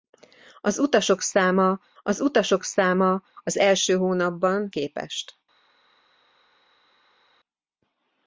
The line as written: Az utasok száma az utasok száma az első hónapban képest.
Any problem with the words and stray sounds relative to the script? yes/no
no